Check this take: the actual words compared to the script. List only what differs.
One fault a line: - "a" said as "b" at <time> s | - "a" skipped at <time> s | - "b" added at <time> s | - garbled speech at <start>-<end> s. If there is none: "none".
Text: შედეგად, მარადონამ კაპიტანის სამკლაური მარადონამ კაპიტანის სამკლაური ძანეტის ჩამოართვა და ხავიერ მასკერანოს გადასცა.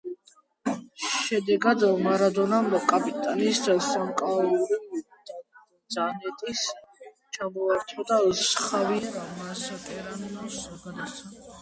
- "მარადონამ კაპიტანის სამკლაური" skipped at 4.8 s